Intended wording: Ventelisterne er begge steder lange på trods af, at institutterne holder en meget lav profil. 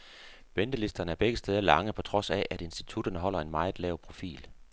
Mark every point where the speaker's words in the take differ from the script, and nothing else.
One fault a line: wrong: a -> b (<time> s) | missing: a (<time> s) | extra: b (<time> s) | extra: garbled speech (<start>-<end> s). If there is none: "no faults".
no faults